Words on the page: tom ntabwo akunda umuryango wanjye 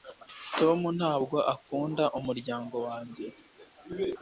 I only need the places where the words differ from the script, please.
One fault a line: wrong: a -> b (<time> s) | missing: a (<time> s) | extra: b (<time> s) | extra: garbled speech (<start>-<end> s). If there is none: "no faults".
no faults